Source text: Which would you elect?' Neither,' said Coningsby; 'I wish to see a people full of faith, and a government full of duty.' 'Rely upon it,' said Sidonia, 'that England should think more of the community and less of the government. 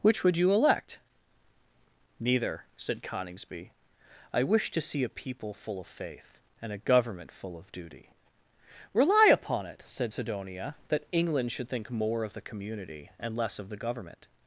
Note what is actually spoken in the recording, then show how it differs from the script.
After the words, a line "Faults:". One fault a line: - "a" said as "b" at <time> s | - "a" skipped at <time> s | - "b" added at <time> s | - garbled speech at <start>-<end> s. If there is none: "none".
Which would you elect?' Neither,' said Coningsby; 'I wish to see a people full of faith, and a government full of duty.' 'Rely upon it,' said Sidonia, 'that England should think more of the community and less of the government.
Faults:
none